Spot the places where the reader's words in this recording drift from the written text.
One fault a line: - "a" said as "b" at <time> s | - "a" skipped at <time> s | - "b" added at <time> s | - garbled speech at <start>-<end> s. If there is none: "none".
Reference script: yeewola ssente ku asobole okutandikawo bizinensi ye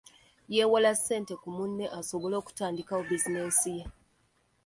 - "munne" added at 1.6 s